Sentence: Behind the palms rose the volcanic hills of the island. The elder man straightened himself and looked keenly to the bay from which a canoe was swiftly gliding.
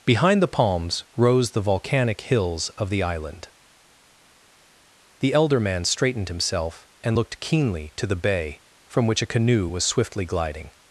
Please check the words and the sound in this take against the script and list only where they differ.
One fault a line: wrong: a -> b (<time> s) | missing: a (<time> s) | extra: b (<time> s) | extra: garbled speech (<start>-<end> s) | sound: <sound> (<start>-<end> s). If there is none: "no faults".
no faults